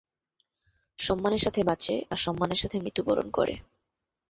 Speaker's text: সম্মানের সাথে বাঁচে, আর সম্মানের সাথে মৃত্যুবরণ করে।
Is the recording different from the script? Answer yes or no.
no